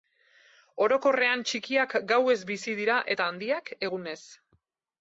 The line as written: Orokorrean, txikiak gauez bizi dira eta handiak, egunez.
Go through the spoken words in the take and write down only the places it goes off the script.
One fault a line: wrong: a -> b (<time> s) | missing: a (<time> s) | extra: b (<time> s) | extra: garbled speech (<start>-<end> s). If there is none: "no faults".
no faults